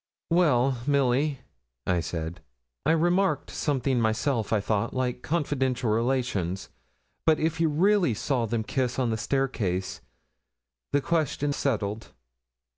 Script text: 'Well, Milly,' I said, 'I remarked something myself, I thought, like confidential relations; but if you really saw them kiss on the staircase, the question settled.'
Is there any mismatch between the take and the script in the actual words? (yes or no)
no